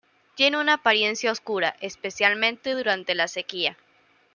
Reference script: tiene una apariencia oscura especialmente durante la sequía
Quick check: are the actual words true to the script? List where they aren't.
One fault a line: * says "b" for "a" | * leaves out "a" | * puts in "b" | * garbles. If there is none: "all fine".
all fine